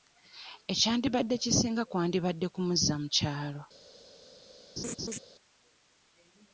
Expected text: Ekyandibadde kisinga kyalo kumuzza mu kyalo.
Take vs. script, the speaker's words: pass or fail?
fail